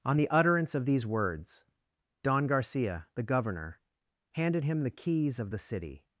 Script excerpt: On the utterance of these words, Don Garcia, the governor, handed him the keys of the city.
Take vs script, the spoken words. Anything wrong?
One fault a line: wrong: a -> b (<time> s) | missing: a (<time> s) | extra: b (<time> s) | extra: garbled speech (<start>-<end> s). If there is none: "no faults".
no faults